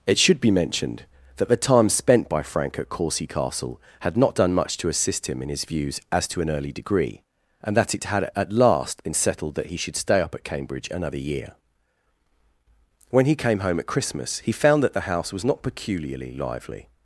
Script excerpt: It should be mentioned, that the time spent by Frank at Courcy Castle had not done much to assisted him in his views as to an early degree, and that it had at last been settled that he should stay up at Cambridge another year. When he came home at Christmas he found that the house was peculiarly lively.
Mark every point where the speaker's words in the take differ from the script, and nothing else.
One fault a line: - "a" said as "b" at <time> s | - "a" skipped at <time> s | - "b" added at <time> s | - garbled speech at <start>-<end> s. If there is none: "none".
- "assisted" said as "assist" at 4.9 s
- "not" added at 15.4 s